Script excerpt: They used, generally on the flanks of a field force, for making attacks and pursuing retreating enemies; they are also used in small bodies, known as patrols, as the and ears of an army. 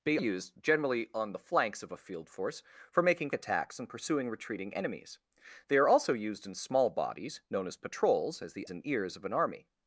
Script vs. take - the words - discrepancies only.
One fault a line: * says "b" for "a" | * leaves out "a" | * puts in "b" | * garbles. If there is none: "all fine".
all fine